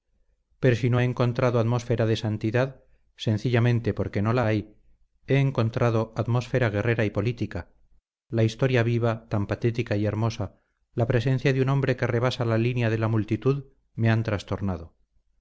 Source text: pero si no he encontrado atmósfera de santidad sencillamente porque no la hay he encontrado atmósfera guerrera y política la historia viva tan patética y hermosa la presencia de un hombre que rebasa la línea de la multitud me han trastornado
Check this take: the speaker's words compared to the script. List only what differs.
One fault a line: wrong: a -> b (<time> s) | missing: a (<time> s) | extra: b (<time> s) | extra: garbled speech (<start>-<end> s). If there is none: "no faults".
no faults